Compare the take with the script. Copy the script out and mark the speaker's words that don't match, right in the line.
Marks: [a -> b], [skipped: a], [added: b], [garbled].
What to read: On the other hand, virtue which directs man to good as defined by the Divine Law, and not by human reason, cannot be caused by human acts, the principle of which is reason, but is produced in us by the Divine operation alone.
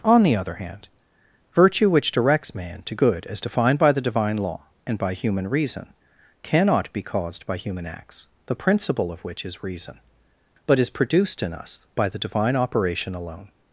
On the other hand, virtue which directs man to good as defined by the Divine Law, and [skipped: not] by human reason, cannot be caused by human acts, the principle of which is reason, but is produced in us by the Divine operation alone.